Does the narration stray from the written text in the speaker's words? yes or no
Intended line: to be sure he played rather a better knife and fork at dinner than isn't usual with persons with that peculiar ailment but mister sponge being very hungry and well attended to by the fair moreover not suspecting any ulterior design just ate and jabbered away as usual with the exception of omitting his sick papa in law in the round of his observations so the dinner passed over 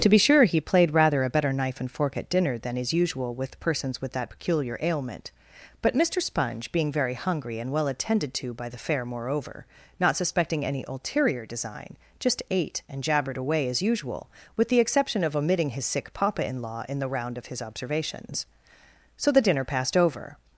yes